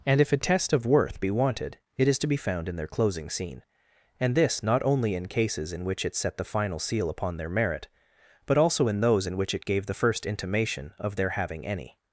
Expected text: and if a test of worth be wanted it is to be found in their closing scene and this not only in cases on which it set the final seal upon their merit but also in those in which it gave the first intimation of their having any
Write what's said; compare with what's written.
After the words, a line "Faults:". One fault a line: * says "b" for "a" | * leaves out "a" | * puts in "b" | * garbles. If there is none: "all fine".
and if a test of worth be wanted it is to be found in their closing scene and this not only in cases in which it set the final seal upon their merit but also in those in which it gave the first intimation of their having any
Faults:
* says "in" for "on"